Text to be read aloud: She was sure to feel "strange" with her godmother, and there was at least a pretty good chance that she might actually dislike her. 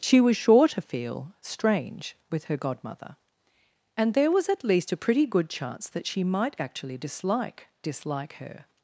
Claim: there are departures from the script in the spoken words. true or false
true